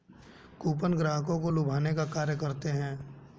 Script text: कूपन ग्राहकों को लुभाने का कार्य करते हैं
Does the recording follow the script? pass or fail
pass